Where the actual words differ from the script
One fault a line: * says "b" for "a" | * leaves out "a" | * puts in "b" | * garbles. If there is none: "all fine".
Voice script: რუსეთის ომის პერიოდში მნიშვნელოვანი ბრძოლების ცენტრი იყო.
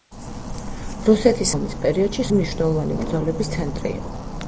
all fine